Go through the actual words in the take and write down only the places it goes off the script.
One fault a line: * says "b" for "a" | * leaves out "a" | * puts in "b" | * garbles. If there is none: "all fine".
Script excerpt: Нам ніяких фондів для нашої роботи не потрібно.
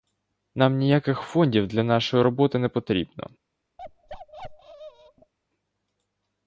all fine